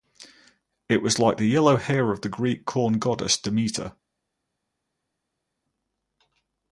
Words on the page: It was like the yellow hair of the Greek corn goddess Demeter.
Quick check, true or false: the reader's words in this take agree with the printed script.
true